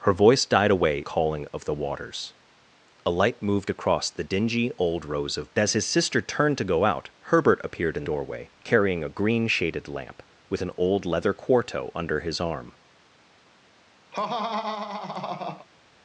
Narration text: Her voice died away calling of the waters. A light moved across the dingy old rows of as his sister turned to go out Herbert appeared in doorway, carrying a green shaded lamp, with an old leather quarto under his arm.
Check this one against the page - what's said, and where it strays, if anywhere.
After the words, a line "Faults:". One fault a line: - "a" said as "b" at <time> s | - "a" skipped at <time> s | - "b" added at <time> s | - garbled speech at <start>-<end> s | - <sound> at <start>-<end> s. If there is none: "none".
Her voice died away calling of the waters. A light moved across the dingy old rows of as his sister turned to go out Herbert appeared in doorway, carrying a green shaded lamp, with an old leather quarto under his arm.
Faults:
- laugh at 14.1-15.7 s